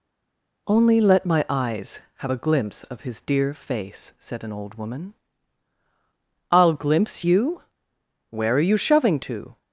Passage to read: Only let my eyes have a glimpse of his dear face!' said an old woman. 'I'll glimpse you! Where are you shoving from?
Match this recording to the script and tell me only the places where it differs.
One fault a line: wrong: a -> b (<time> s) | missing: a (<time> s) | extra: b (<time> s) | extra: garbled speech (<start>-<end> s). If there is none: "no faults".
wrong: from -> to (9.2 s)